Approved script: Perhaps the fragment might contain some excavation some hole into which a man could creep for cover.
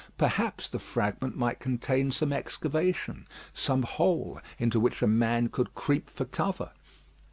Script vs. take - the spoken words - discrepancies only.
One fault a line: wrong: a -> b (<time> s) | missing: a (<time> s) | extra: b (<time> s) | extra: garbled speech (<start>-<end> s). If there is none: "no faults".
no faults